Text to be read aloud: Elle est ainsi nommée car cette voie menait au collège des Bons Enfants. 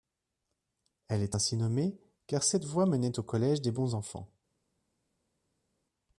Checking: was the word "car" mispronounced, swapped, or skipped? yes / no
no